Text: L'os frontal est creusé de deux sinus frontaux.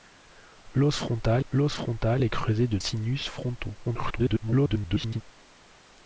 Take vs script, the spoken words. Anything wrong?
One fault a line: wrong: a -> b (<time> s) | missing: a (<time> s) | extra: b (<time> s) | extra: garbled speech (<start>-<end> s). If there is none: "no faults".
extra: l'os frontal (1.5 s)
missing: deux (2.8 s)
extra: garbled speech (3.8-5.2 s)